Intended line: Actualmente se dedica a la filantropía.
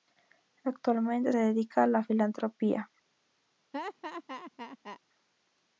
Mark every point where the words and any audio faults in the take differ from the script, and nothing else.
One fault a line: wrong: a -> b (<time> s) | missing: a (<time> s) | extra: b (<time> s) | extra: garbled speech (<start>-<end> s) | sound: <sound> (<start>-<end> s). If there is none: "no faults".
missing: se (1.3 s)
sound: laugh (3.7-5.0 s)